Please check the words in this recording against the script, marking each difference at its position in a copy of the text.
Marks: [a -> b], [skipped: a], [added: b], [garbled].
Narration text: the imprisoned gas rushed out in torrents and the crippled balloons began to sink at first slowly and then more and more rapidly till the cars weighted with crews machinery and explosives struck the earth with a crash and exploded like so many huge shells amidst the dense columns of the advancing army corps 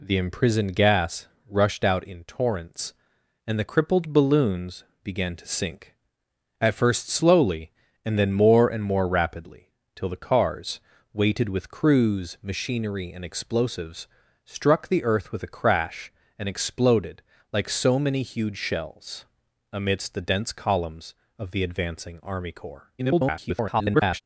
the imprisoned gas rushed out in torrents and the crippled balloons began to sink at first slowly and then more and more rapidly till the cars weighted with crews machinery and explosives struck the earth with a crash and exploded like so many huge shells amidst the dense columns of the advancing army corps [garbled]